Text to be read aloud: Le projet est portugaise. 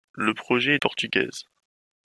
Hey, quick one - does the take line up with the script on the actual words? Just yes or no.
yes